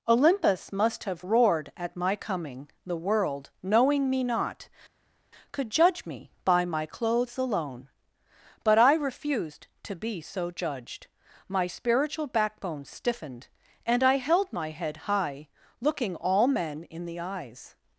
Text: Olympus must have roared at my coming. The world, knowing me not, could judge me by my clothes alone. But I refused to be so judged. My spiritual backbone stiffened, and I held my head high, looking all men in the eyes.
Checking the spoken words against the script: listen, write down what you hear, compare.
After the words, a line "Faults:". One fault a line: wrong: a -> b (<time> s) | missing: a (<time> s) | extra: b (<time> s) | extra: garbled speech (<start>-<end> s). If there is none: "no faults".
Olympus must have roared at my coming. The world, knowing me not, could judge me by my clothes alone. But I refused to be so judged. My spiritual backbone stiffened, and I held my head high, looking all men in the eyes.
Faults:
no faults